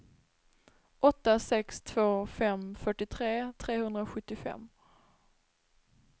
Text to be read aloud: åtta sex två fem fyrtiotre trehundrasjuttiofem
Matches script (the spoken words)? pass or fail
pass